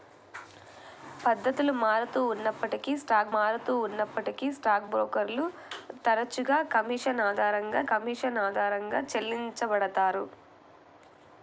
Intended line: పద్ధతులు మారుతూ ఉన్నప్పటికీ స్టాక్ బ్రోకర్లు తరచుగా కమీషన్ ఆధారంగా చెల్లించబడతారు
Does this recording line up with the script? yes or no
no